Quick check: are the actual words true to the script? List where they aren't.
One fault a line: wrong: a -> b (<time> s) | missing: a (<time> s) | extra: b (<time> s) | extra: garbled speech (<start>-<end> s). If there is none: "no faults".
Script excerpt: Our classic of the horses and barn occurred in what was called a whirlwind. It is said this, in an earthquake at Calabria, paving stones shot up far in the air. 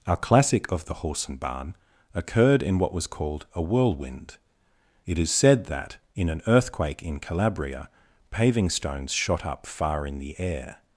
wrong: horses -> horse (0.9 s)
wrong: this -> that (5.7 s)
wrong: at -> in (7.0 s)